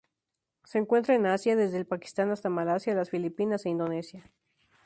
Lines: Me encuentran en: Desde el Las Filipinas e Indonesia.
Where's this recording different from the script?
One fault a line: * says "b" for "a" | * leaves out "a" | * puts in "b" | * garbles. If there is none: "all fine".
* says "Se" for "Me"
* puts in "Asia"
* puts in "Pakistán hasta Malasia"